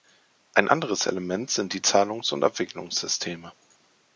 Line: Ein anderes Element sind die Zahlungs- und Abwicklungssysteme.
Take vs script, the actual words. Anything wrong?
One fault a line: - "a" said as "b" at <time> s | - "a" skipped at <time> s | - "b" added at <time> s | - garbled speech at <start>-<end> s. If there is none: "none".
none